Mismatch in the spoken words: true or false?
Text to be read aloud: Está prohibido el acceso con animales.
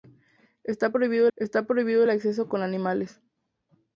true